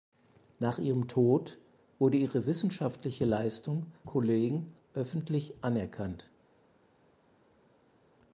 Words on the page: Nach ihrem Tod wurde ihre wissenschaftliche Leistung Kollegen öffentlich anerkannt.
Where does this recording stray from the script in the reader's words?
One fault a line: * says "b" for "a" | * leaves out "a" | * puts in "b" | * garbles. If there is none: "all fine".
all fine